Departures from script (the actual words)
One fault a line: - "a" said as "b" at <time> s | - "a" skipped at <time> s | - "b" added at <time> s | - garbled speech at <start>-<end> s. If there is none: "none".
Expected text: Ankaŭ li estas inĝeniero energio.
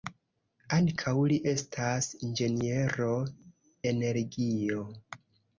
none